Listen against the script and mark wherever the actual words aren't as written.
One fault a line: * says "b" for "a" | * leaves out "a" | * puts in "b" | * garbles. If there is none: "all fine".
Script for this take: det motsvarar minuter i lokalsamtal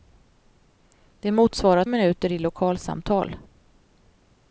all fine